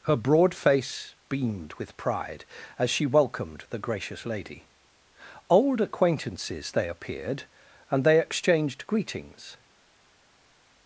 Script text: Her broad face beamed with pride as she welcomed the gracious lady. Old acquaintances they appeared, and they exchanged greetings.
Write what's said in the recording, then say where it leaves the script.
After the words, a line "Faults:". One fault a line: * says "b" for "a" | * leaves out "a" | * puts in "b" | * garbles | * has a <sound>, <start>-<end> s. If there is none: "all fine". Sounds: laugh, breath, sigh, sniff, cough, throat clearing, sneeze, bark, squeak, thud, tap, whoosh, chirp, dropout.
Her broad face beamed with pride as she welcomed the gracious lady. Old acquaintances they appeared, and they exchanged greetings.
Faults:
all fine